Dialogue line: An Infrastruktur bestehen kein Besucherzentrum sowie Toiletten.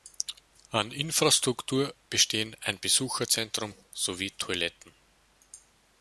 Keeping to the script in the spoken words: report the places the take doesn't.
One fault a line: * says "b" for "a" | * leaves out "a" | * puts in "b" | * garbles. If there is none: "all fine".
* says "ein" for "kein"